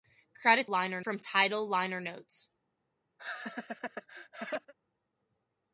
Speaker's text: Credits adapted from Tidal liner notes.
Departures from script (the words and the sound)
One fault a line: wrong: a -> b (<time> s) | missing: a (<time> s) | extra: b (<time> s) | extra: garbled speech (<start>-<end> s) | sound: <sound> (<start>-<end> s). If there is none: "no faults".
wrong: adapted -> liner (0.7 s)
sound: laugh (3.2-4.7 s)